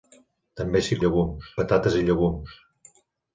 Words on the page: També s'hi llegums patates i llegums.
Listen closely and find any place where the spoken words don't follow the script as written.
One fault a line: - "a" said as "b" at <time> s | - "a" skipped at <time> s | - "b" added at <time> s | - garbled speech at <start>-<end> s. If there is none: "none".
none